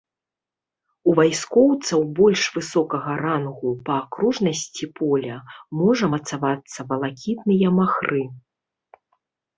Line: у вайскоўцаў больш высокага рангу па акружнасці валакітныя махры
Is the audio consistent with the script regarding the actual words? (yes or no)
no